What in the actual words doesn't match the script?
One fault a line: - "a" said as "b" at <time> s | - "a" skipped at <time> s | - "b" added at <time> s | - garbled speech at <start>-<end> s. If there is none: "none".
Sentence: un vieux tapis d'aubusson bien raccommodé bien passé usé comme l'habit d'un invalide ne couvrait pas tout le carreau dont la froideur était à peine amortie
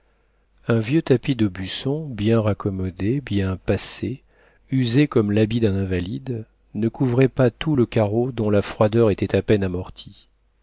none